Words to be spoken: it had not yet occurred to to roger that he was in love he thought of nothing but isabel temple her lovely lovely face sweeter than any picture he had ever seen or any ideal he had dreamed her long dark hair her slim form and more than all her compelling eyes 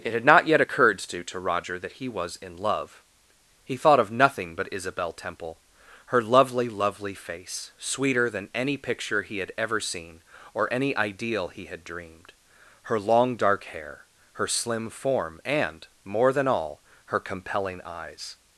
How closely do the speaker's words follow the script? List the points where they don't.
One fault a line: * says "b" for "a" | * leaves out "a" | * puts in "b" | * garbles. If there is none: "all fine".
all fine